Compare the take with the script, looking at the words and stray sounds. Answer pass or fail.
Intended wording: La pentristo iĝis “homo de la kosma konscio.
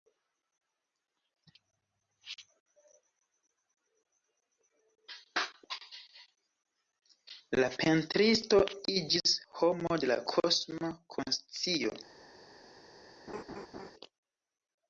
fail